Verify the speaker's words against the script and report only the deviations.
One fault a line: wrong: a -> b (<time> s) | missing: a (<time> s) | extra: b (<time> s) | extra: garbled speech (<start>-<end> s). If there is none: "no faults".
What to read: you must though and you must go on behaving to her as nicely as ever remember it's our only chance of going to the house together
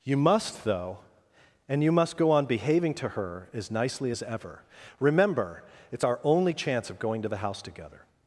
no faults